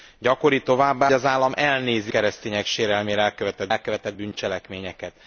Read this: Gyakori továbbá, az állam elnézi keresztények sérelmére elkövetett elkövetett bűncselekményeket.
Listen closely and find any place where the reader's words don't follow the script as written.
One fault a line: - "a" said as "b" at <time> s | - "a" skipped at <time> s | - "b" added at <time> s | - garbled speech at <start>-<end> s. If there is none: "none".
none